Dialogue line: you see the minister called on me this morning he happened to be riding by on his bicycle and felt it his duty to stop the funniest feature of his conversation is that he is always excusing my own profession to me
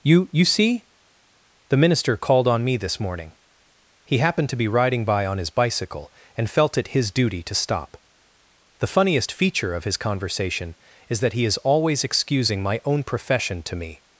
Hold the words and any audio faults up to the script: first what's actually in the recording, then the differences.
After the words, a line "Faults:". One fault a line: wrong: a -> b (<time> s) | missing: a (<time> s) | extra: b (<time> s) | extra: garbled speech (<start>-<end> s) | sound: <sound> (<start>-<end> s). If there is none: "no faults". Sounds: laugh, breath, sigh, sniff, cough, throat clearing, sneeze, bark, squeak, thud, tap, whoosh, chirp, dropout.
you you see the minister called on me this morning he happened to be riding by on his bicycle and felt it his duty to stop the funniest feature of his conversation is that he is always excusing my own profession to me
Faults:
extra: you (0.3 s)